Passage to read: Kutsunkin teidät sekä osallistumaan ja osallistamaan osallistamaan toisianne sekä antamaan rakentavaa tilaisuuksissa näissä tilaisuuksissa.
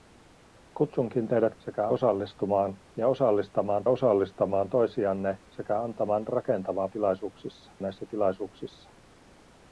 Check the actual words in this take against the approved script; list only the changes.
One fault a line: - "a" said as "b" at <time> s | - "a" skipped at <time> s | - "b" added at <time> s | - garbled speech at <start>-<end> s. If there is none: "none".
none